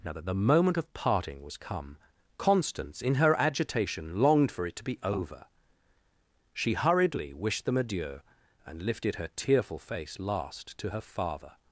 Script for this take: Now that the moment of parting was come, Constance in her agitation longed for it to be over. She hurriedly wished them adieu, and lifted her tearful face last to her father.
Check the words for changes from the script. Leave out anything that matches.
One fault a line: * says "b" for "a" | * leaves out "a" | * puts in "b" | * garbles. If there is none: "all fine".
all fine